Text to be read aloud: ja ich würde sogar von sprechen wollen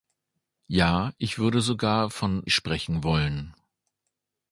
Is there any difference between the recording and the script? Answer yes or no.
no